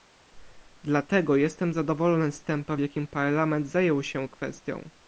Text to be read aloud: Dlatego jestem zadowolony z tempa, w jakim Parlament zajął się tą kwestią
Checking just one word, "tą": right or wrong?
wrong